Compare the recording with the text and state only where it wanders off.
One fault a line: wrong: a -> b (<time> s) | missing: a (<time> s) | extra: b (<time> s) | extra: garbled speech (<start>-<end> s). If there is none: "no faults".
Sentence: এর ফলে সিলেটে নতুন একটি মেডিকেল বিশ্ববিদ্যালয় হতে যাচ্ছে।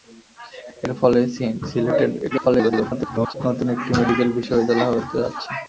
extra: garbled speech (2.3-3.3 s)